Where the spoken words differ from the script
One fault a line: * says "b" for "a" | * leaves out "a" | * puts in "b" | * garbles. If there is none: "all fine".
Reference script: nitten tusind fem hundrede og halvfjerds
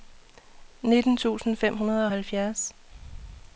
all fine